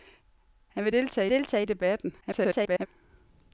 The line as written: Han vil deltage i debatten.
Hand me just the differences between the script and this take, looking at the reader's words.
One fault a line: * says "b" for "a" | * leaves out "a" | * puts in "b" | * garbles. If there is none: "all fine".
* puts in "deltage"
* garbles